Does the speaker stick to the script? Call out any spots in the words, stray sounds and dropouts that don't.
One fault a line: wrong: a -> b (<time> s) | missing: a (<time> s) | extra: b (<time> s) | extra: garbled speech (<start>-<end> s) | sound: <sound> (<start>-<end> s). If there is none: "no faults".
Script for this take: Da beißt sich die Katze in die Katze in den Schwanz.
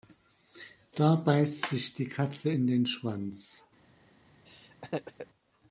missing: die Katze in (2.7 s)
sound: laugh (4.5-5.3 s)